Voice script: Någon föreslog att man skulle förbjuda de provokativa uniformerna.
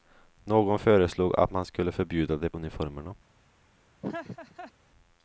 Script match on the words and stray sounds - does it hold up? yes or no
no